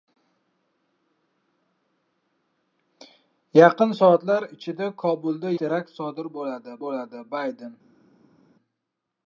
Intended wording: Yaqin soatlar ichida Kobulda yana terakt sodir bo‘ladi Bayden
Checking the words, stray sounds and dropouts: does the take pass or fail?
fail